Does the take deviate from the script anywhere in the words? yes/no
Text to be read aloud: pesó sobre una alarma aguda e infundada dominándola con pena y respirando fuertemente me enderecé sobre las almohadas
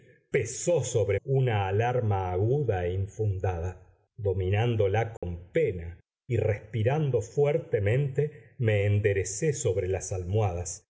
no